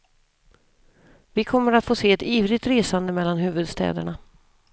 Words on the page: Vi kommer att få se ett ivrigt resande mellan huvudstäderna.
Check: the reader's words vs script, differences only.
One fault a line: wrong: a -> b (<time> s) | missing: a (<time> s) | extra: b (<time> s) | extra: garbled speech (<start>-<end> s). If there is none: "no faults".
no faults